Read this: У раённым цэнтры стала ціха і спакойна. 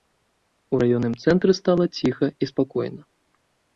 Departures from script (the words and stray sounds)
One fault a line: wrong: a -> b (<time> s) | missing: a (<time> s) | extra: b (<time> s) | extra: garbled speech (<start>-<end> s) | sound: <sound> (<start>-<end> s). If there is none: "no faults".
no faults